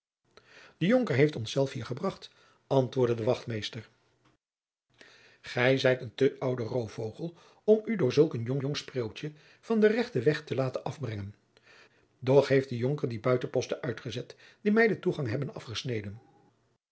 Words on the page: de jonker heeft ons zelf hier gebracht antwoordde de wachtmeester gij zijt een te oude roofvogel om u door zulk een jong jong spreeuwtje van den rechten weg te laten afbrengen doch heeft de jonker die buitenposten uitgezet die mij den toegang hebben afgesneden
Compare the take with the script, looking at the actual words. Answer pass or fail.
pass